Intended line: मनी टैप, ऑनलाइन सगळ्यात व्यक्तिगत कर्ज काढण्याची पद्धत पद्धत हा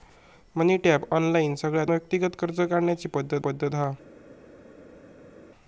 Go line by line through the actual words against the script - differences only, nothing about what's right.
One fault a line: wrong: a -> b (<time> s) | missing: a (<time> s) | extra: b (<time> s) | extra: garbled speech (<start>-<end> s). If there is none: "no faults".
no faults